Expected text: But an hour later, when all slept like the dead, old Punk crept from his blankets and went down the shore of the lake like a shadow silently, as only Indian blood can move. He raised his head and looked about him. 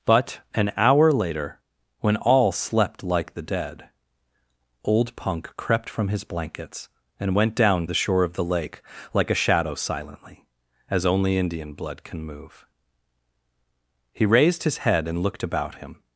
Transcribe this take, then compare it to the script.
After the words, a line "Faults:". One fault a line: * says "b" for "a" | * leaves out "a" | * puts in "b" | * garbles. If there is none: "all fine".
But an hour later, when all slept like the dead, old Punk crept from his blankets and went down the shore of the lake like a shadow silently, as only Indian blood can move. He raised his head and looked about him.
Faults:
all fine